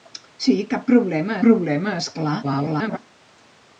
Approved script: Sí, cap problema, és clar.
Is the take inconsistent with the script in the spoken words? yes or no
yes